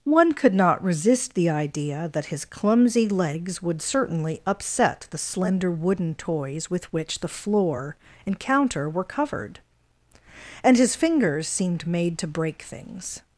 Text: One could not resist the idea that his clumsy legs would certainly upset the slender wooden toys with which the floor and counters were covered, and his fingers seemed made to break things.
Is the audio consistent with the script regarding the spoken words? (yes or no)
no